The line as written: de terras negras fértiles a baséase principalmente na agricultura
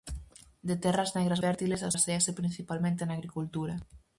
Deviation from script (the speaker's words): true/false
false